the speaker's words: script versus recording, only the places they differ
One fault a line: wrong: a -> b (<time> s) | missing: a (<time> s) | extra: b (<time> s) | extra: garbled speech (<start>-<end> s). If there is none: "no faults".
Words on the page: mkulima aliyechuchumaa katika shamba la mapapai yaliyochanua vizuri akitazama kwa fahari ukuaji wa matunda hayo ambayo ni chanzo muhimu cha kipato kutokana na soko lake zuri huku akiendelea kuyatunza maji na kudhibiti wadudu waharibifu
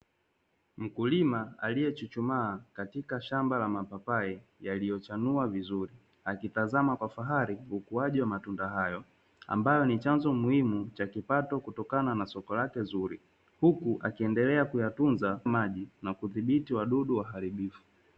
no faults